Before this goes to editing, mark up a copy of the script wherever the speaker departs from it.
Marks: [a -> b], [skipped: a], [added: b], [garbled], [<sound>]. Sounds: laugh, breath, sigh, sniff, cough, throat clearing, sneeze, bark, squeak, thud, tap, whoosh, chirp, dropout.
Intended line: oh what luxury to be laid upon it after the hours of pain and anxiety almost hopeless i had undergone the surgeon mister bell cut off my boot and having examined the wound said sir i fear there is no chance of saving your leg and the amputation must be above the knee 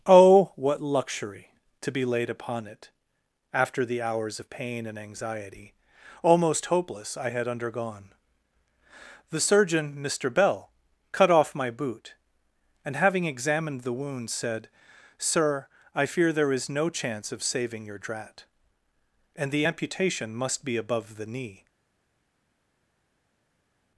oh what luxury to be laid upon it after the hours of pain and anxiety almost hopeless i had undergone the surgeon mister bell cut off my boot and having examined the wound said sir i fear there is no chance of saving your [leg -> drat] and the amputation must be above the knee